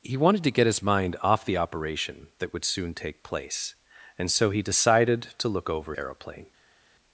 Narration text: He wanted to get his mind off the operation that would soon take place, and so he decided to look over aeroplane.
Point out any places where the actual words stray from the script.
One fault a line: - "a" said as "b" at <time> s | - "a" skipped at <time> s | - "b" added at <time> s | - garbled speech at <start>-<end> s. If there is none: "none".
none